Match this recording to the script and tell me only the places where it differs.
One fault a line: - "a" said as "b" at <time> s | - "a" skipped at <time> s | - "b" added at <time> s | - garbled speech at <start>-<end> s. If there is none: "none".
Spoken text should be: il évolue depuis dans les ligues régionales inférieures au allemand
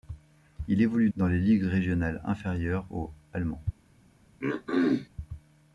- "depuis" skipped at 1.1 s